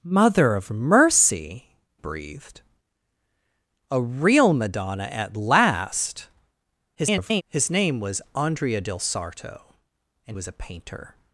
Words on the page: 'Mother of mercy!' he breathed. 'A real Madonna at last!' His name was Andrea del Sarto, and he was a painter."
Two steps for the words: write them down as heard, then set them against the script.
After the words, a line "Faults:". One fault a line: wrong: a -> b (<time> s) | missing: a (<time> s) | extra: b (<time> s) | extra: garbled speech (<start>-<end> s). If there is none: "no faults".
'Mother of mercy!' breathed. 'A real Madonna at last!' [garbled] His name was Andrea del Sarto, and was a painter."
Faults:
missing: he (1.8 s)
extra: garbled speech (6.9-7.4 s)
missing: he (10.4 s)